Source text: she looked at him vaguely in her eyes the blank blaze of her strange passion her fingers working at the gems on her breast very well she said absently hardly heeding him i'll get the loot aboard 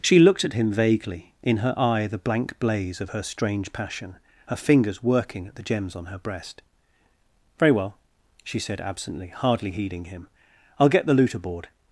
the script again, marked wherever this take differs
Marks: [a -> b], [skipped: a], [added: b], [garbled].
she looked at him vaguely in her [eyes -> eye] the blank blaze of her strange passion her fingers working at the gems on her breast very well she said absently hardly heeding him i'll get the loot aboard